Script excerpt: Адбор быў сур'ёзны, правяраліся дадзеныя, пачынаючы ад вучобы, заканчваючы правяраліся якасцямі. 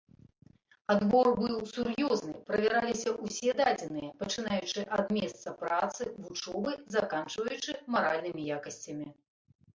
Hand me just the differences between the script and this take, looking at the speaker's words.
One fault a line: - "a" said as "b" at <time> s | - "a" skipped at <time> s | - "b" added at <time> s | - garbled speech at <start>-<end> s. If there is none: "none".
- "ўсе" added at 3.2 s
- "месца працы" added at 5.2 s
- "правяраліся" said as "маральнымі" at 8.0 s